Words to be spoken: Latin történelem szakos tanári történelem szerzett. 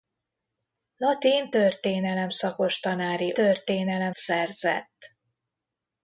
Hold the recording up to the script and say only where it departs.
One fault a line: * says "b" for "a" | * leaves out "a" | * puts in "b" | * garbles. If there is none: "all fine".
all fine